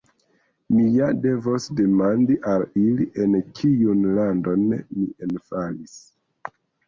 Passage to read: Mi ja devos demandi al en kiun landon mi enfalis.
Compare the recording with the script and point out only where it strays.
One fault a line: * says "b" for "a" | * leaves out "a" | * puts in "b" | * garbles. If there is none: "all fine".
* puts in "ili"